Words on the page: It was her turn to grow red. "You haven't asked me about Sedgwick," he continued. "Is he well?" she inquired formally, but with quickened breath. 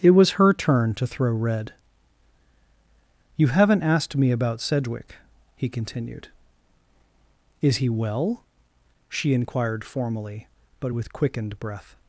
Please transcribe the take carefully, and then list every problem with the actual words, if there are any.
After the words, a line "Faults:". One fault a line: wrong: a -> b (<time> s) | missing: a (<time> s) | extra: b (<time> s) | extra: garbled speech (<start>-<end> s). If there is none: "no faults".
It was her turn to throw red. "You haven't asked me about Sedgwick," he continued. "Is he well?" she inquired formally, but with quickened breath.
Faults:
wrong: grow -> throw (1.1 s)